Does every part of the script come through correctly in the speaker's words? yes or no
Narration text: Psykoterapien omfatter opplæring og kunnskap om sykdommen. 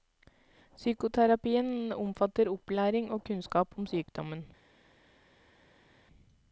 yes